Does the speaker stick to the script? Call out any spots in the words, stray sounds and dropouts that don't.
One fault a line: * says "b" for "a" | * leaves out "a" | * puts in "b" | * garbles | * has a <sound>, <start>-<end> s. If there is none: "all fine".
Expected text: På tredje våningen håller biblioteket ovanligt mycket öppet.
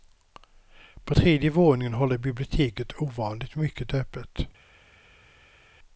all fine